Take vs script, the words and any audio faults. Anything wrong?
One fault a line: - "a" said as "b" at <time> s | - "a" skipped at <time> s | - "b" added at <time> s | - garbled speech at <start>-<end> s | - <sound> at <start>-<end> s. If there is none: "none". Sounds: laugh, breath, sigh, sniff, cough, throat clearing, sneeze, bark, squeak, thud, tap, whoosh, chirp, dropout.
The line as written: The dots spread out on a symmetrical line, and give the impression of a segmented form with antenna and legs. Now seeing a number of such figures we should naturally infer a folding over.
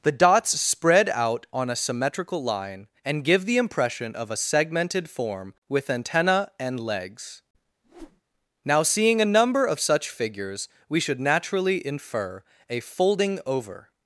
- whoosh at 7.8-8.2 s